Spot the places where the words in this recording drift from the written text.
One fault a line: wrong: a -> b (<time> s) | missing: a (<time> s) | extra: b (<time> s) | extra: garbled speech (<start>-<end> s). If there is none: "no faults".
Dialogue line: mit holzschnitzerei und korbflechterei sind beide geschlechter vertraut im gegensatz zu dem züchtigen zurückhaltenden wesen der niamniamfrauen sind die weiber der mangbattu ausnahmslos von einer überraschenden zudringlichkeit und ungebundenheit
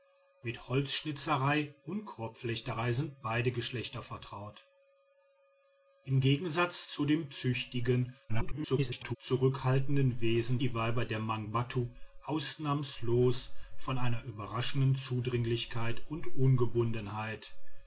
extra: garbled speech (8.3-9.2 s)
missing: der niamniamfrauen sind (10.6 s)